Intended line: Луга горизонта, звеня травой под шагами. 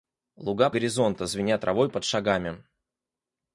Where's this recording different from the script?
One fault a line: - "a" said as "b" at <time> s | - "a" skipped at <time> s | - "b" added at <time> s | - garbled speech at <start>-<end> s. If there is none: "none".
none